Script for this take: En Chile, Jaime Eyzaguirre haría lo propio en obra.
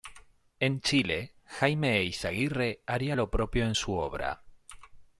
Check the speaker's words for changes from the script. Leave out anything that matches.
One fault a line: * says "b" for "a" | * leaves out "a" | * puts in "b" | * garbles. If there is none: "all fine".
* puts in "su"